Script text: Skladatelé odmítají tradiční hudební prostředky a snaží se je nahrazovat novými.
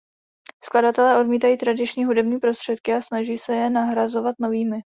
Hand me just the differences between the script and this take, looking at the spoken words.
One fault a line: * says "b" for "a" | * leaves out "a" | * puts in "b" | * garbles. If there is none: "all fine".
all fine